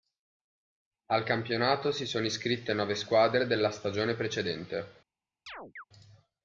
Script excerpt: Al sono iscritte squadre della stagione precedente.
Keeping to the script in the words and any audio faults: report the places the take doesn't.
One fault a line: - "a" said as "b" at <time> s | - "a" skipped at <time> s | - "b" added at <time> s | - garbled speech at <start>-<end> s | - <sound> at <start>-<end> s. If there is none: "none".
- "campionato si" added at 1.2 s
- "nove" added at 2.7 s
- chirp at 5.5-5.8 s